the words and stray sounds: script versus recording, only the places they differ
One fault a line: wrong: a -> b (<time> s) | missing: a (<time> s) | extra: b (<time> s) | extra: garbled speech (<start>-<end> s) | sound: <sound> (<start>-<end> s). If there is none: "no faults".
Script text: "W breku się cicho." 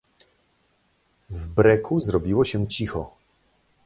extra: zrobiło (2.0 s)